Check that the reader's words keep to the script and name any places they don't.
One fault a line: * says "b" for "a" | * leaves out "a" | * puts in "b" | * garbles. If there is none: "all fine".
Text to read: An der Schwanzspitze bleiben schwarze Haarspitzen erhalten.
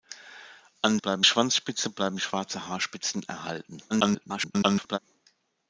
* says "bleiben" for "der"
* garbles